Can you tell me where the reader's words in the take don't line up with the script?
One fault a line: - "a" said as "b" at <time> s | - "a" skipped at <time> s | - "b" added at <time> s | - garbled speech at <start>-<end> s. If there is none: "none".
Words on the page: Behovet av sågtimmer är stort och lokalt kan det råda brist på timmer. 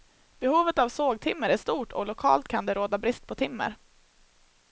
none